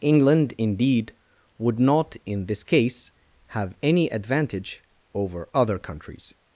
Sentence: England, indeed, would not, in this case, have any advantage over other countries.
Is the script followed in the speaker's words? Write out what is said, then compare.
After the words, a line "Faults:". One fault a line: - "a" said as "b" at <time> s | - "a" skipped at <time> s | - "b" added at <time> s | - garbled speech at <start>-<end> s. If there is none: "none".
England, indeed, would not, in this case, have any advantage over other countries.
Faults:
none